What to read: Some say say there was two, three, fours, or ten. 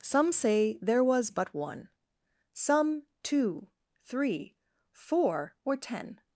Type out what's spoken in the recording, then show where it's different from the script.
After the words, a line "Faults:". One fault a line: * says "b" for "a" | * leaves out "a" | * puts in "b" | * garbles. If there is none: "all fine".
Some say there was but one; some two, three, four, or ten.
Faults:
* leaves out "say"
* puts in "but one some"
* says "four" for "fours"